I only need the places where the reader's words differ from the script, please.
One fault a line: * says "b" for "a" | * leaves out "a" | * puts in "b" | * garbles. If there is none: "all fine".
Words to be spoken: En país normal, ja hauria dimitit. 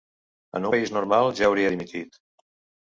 all fine